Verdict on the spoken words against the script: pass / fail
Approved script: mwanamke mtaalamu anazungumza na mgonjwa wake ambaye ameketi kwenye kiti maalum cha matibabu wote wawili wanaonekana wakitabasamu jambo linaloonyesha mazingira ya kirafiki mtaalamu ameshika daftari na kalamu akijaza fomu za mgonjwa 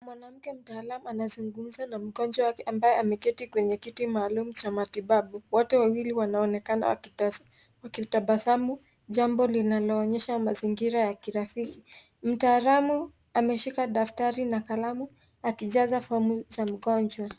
pass